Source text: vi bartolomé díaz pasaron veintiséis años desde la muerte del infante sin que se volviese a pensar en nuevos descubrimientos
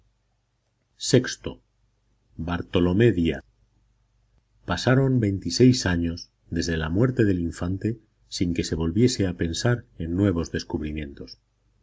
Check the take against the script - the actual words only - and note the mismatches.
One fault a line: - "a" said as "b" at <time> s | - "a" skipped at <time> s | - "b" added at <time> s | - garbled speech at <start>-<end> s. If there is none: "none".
none